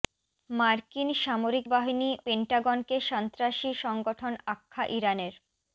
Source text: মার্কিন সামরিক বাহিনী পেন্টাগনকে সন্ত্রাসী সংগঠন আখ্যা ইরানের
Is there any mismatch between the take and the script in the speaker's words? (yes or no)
no